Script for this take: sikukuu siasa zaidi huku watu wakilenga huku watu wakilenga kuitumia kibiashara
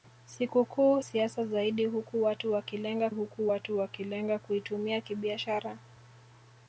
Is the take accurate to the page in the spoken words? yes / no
yes